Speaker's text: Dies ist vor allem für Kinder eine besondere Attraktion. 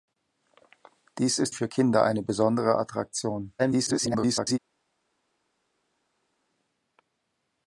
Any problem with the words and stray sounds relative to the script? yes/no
yes